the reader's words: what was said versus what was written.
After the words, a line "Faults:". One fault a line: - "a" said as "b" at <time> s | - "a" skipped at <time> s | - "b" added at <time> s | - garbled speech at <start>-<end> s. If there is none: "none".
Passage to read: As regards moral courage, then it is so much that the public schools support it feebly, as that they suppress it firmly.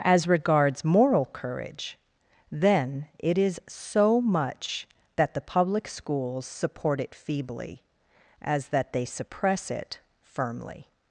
As regards moral courage, then it is so much that the public schools support it feebly, as that they suppress it firmly.
Faults:
none